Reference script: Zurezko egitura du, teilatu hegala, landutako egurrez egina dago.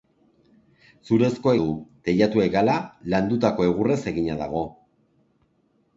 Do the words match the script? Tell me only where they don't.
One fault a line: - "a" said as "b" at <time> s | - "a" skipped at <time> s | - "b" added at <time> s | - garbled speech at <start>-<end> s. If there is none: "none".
- "egitura" skipped at 1.5 s